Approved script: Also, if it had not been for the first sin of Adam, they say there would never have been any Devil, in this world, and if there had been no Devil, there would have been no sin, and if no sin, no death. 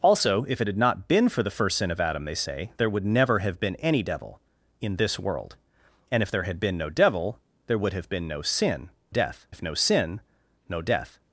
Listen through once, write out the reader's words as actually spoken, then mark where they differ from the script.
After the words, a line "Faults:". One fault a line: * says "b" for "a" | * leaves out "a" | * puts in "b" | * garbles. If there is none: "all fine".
Also, if it had not been for the first sin of Adam, they say there would never have been any Devil, in this world, and if there had been no Devil, there would have been no sin, death if no sin, no death.
Faults:
* says "death" for "and"